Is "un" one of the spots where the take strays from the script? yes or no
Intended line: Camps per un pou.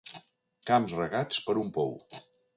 no